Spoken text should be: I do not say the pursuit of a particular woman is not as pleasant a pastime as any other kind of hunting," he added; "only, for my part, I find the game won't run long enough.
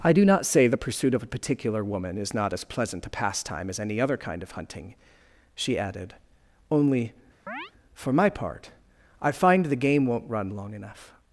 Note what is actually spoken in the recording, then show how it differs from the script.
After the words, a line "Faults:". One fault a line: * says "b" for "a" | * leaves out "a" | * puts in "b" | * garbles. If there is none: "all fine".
I do not say the pursuit of a particular woman is not as pleasant a pastime as any other kind of hunting," she added; "only, for my part, I find the game won't run long enough.
Faults:
* says "she" for "he"